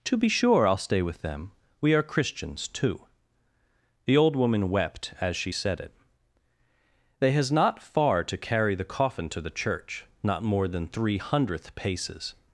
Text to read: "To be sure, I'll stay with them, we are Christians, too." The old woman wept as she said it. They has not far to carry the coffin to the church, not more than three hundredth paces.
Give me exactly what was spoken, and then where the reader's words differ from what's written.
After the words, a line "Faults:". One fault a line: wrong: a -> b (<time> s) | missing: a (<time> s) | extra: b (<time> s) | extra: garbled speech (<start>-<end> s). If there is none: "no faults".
"To be sure, I'll stay with them, we are Christians, too." The old woman wept as she said it. They has not far to carry the coffin to the church, not more than three hundredth paces.
Faults:
no faults